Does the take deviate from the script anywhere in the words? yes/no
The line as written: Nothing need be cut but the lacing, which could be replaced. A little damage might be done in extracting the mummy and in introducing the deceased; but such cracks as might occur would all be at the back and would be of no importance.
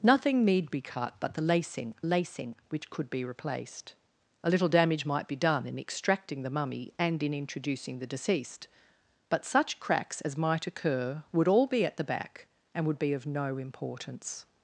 yes